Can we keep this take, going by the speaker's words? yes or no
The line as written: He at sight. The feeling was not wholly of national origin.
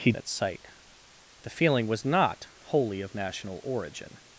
yes